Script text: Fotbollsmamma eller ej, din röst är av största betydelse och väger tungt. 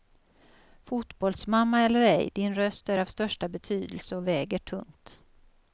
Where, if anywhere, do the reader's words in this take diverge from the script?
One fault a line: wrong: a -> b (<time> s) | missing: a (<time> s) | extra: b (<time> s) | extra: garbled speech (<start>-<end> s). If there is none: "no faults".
no faults